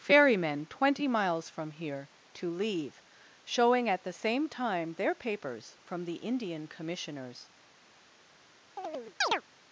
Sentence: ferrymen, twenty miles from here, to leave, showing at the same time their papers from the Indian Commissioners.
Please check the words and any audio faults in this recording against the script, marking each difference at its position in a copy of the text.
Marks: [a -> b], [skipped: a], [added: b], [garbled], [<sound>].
ferrymen, twenty miles from here, to leave, showing at the same time their papers from the Indian Commissioners. [chirp]